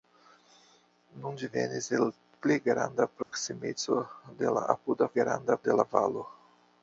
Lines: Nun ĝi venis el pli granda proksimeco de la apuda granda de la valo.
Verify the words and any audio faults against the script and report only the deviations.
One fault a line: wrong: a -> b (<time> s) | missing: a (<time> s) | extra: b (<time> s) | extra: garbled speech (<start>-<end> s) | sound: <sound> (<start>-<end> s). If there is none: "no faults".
sound: dropout (3.2-3.3 s)